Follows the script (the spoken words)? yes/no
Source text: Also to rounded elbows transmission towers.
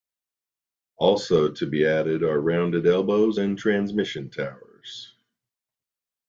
no